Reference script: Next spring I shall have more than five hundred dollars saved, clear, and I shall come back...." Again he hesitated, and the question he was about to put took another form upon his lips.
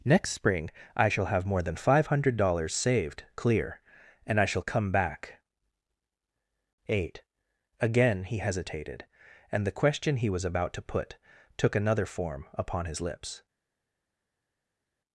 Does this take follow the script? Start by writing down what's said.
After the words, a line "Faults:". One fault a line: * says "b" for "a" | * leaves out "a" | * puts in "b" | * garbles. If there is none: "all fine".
Next spring I shall have more than five hundred dollars saved, clear, and I shall come back...." eight Again he hesitated, and the question he was about to put took another form upon his lips.
Faults:
* puts in "eight"